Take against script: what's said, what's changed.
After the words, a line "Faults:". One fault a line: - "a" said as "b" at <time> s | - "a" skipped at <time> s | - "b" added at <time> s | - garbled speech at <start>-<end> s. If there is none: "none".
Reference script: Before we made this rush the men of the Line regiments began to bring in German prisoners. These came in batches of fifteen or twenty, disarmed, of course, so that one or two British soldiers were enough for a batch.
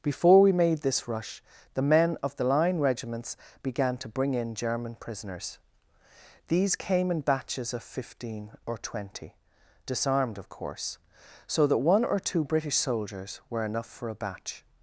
Before we made this rush the men of the Line regiments began to bring in German prisoners. These came in batches of fifteen or twenty, disarmed, of course, so that one or two British soldiers were enough for a batch.
Faults:
none